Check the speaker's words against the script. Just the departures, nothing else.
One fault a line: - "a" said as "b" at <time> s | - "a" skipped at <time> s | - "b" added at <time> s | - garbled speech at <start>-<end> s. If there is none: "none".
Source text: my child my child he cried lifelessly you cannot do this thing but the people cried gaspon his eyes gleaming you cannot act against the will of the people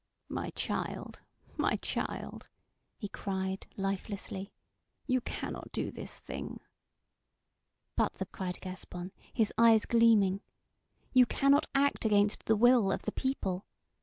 - "people" skipped at 8.2 s